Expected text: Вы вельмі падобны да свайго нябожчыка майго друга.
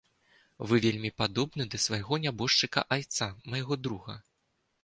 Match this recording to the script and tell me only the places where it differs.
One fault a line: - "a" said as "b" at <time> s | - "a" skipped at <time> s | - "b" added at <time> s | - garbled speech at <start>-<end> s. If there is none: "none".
- "айца" added at 3.0 s